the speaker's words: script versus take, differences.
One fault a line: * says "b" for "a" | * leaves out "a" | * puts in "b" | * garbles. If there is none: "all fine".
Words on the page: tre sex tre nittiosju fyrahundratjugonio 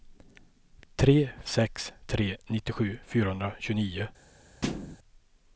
all fine